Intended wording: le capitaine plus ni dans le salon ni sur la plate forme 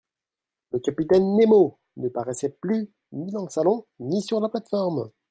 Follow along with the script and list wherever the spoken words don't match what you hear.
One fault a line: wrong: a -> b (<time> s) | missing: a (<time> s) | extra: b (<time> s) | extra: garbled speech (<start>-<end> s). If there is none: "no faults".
extra: nemo ne paraissait (1.4 s)